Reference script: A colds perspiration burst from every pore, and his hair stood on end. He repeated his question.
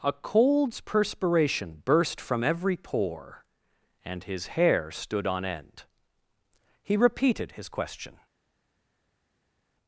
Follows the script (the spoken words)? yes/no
yes